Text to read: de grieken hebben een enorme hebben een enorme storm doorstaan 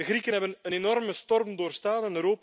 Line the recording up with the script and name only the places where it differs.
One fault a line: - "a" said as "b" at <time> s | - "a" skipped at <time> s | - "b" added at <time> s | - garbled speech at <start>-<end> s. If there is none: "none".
- "hebben een enorme" skipped at 1.1 s